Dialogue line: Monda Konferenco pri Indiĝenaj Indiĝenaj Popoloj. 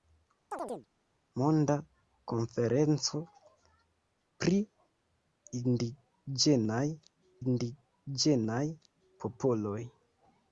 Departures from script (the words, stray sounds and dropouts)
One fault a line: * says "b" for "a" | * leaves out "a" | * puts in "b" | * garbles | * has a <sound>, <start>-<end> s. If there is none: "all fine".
* has a chirp, 0.5-0.9 s